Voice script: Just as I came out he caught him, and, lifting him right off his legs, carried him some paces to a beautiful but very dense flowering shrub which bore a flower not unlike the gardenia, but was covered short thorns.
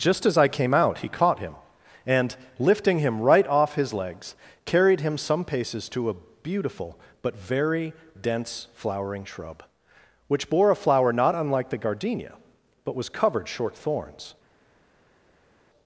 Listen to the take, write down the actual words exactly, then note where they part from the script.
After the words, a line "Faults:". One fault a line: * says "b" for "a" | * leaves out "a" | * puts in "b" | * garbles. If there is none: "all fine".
Just as I came out he caught him, and, lifting him right off his legs, carried him some paces to a beautiful but very dense flowering shrub which bore a flower not unlike the gardenia, but was covered short thorns.
Faults:
all fine